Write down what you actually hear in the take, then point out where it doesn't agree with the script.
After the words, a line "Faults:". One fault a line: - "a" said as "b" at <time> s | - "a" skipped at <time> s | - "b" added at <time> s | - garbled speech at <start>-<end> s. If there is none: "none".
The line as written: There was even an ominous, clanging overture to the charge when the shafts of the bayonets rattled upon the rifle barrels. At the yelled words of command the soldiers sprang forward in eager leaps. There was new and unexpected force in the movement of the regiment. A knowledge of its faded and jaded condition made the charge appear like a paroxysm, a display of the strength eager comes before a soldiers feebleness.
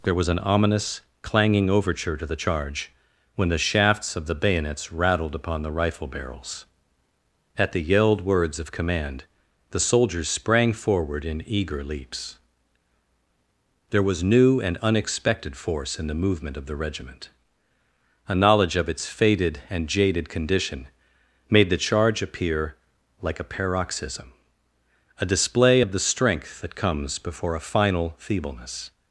There was an ominous, clanging overture to the charge when the shafts of the bayonets rattled upon the rifle barrels. At the yelled words of command the soldiers sprang forward in eager leaps. There was new and unexpected force in the movement of the regiment. A knowledge of its faded and jaded condition made the charge appear like a paroxysm, a display of the strength that comes before a final feebleness.
Faults:
- "even" skipped at 0.3 s
- "eager" said as "that" at 26.6 s
- "soldiers" said as "final" at 27.6 s